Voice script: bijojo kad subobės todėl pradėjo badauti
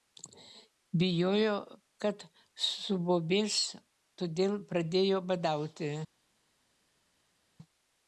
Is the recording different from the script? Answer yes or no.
no